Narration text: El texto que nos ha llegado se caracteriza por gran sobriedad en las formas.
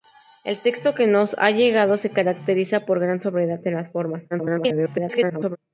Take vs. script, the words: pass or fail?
fail